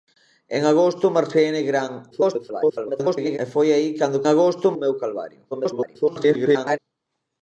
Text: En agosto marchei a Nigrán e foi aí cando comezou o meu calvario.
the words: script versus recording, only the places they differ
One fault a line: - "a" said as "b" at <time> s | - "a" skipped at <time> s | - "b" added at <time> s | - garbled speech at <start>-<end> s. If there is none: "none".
- garbled speech at 2.1-3.4 s
- "comezou" said as "agosto" at 4.3 s
- garbled speech at 5.5-6.8 s